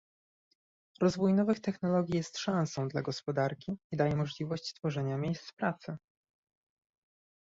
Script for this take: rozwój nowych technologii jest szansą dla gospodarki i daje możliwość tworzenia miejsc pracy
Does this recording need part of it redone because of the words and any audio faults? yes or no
no